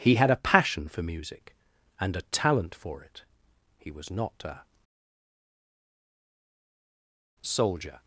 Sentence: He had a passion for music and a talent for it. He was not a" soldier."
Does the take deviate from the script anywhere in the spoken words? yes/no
no